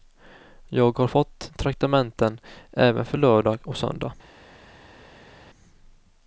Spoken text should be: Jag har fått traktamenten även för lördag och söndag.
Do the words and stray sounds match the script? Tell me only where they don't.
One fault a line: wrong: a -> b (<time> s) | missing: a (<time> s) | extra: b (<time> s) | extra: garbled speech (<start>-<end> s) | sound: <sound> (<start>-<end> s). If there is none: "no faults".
no faults